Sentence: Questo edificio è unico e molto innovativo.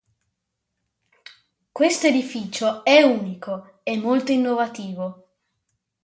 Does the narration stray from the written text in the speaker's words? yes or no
no